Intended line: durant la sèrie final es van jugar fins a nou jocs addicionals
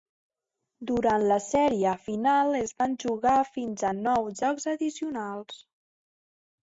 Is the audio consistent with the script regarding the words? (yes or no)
yes